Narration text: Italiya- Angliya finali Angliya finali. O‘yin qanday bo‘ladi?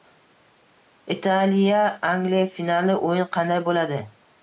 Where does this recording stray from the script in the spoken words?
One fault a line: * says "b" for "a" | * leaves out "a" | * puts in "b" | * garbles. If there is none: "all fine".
* leaves out "Angliya finali"